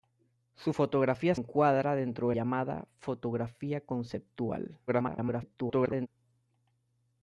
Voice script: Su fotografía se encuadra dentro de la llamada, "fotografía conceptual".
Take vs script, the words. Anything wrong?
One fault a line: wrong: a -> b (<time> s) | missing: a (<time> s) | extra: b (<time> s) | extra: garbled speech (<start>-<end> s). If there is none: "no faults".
missing: se (1.3 s)
missing: la (2.4 s)
extra: garbled speech (4.9-6.1 s)